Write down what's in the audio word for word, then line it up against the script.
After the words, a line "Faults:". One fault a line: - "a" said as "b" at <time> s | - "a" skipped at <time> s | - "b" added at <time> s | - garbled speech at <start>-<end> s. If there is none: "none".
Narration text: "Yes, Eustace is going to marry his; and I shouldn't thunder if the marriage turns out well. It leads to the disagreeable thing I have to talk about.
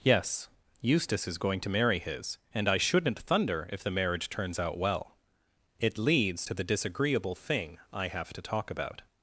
"Yes, Eustace is going to marry his; and I shouldn't thunder if the marriage turns out well. It leads to the disagreeable thing I have to talk about.
Faults:
none